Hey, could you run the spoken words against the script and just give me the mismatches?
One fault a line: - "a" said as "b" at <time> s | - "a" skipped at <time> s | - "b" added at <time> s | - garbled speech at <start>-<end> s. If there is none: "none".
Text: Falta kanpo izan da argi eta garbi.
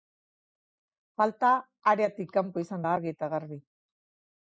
- "areatik" added at 1.9 s